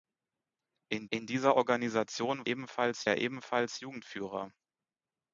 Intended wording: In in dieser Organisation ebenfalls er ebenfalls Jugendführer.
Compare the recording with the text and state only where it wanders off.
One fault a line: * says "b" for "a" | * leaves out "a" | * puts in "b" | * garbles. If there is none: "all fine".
all fine